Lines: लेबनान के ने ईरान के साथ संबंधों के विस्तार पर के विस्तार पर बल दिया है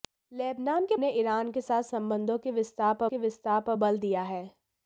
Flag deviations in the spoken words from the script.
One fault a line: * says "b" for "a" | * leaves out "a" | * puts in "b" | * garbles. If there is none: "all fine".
all fine